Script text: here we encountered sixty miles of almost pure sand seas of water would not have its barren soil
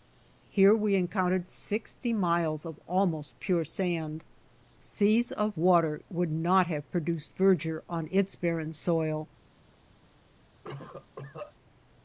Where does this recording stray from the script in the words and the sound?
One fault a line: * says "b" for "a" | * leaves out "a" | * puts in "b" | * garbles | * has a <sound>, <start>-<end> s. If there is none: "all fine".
* puts in "produced verdure on"
* has a cough, 10.6-11.5 s